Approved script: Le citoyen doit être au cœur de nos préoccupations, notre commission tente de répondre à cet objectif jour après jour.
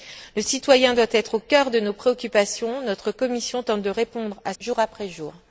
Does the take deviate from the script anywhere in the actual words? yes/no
yes